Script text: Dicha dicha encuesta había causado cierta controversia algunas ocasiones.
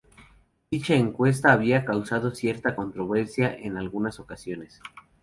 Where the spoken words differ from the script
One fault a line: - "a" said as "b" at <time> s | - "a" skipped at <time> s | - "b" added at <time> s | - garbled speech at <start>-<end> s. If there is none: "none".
- "dicha" skipped at 0.9 s
- "en" added at 3.5 s